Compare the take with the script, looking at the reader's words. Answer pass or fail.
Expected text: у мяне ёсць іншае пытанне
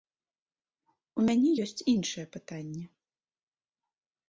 pass